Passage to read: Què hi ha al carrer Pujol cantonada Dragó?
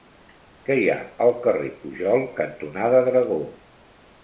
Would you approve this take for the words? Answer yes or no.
yes